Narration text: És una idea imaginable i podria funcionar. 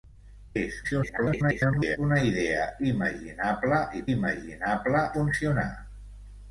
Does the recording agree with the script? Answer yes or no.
no